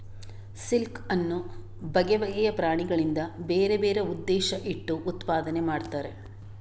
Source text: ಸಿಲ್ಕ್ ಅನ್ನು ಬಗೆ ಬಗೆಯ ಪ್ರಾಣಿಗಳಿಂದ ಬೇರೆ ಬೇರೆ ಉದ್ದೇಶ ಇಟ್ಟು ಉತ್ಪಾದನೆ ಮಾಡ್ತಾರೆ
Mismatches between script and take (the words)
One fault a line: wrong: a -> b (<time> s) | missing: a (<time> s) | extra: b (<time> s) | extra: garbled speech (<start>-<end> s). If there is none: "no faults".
no faults